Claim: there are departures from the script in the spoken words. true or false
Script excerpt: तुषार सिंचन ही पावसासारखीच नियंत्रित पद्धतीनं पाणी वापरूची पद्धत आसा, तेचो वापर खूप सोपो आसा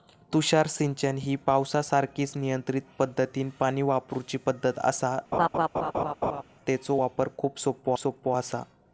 true